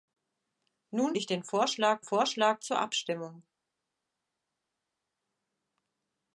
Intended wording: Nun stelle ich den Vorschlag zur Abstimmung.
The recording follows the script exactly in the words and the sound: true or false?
false